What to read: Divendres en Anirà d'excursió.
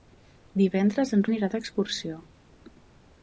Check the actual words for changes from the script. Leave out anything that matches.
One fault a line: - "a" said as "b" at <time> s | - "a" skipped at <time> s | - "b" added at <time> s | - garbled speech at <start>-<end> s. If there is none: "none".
none